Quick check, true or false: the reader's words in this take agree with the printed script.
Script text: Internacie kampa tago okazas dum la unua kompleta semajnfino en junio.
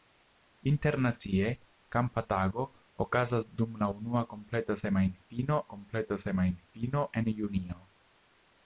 false